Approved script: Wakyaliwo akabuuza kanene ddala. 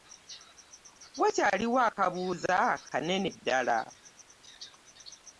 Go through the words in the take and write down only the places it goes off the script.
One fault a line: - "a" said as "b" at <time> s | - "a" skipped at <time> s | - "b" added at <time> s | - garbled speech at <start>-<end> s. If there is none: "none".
none